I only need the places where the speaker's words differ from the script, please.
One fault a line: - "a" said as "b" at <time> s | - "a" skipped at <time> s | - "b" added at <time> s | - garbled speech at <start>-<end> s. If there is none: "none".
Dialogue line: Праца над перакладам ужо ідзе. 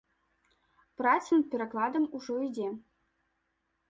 none